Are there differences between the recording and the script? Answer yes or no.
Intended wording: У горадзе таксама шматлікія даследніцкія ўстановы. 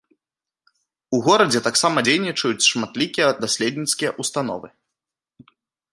yes